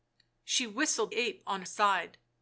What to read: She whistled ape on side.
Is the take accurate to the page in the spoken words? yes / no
yes